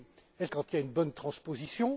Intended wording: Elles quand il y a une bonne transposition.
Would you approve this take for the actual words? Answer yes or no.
yes